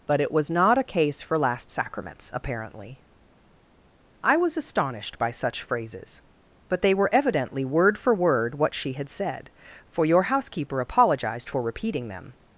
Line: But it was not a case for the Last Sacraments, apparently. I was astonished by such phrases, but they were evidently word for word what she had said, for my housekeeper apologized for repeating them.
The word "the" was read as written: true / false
false